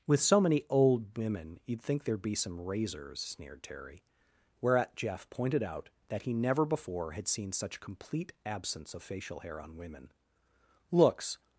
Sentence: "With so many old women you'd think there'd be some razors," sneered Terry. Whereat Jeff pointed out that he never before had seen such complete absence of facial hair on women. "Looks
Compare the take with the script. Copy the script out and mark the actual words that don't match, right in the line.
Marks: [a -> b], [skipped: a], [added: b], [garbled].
"With so many old women you'd think there'd be some razors," sneered Terry. Whereat Jeff pointed out that he never before had seen such complete absence of facial hair on women. "Looks